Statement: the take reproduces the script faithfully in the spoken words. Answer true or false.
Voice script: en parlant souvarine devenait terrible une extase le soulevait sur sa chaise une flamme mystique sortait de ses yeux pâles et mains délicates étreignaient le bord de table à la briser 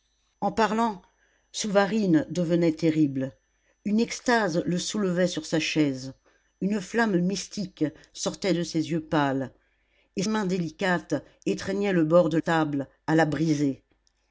true